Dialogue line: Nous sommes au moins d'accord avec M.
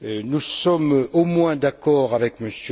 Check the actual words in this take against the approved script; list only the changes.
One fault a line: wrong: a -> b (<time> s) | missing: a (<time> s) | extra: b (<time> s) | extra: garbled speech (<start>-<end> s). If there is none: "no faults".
no faults